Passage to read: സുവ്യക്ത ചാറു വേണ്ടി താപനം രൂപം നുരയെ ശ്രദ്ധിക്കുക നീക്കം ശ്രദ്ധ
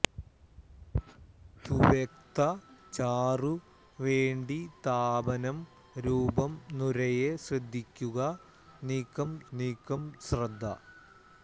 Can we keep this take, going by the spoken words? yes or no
no